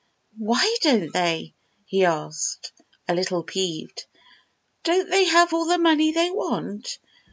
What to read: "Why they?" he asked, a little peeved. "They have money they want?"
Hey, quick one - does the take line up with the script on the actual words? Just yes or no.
no